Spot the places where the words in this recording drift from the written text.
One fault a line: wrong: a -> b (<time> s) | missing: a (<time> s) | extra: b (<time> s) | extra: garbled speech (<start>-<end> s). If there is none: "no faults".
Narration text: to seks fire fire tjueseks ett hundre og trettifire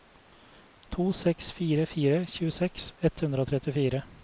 no faults